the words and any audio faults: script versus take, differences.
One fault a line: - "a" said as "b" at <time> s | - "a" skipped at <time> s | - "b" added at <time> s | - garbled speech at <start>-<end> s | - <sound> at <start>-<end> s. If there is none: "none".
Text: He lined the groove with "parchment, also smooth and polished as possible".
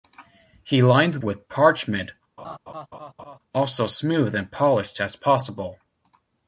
- "the groove" skipped at 1.2 s
- laugh at 2.4-3.4 s